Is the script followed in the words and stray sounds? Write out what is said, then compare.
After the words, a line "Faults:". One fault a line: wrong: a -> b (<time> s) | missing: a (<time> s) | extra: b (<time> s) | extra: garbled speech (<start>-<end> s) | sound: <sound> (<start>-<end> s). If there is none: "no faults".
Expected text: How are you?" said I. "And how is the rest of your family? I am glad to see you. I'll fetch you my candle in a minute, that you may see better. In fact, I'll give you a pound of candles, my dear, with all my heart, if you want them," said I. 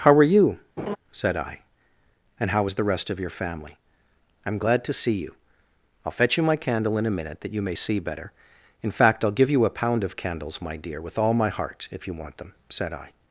How are you?" said I. "And how is the rest of your family? I am glad to see you. I'll fetch you my candle in a minute, that you may see better. In fact, I'll give you a pound of candles, my dear, with all my heart, if you want them," said I.
Faults:
sound: laugh (0.8-1.0 s)